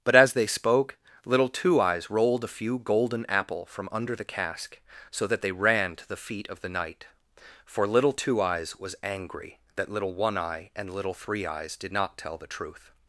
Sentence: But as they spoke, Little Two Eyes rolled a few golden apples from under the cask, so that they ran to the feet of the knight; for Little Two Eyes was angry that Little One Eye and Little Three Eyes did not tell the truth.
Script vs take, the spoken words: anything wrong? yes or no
yes